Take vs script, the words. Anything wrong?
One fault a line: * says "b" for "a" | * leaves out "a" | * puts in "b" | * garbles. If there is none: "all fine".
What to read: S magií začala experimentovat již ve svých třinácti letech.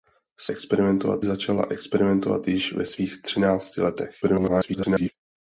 * says "experimentovat" for "magií"
* garbles